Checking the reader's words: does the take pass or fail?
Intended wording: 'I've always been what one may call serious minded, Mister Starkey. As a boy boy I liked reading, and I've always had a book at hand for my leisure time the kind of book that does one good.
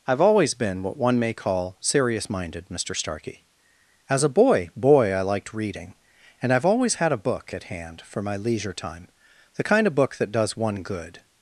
pass